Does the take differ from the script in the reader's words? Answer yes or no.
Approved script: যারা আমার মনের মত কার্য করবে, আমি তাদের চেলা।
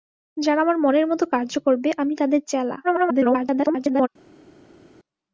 yes